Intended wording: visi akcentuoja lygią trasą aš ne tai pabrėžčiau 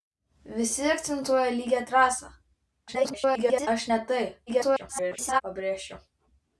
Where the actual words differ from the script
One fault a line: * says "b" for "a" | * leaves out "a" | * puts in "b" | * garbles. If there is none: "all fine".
* garbles
* garbles